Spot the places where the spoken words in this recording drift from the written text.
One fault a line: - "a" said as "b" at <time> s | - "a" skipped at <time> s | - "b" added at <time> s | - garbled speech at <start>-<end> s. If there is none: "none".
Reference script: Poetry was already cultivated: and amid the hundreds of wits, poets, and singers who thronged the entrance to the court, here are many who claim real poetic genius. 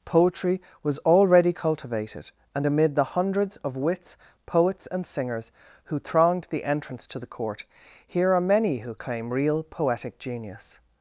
none